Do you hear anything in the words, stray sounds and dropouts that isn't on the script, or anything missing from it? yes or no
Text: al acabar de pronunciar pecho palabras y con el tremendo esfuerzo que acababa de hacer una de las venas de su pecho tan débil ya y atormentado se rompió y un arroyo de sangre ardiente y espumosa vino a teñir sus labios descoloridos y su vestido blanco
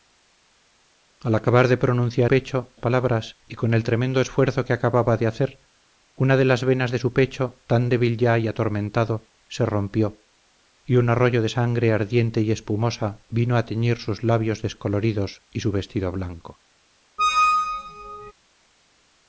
yes